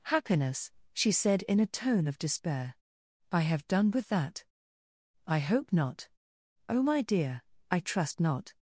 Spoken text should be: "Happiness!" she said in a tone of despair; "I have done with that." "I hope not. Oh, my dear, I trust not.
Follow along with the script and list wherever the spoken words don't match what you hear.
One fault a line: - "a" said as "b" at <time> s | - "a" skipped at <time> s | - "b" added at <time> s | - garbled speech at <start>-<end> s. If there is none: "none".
none